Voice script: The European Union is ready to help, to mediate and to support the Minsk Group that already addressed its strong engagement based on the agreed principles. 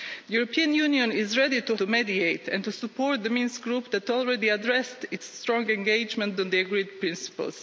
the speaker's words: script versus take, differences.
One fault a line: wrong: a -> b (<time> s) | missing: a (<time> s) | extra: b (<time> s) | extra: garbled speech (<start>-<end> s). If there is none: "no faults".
missing: help (1.8 s)
missing: based (6.4 s)